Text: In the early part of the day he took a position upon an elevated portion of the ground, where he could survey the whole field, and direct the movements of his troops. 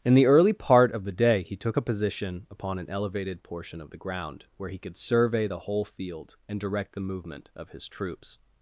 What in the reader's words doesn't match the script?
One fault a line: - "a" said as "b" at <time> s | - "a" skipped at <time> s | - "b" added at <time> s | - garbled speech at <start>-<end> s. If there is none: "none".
- "movements" said as "movement" at 7.0 s